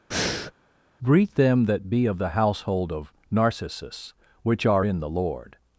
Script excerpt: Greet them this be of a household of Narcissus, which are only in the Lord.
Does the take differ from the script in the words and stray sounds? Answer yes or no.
yes